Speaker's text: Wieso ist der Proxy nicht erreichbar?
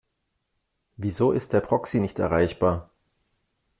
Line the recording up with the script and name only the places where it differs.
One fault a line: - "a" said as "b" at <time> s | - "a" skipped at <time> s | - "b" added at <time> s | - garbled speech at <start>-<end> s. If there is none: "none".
none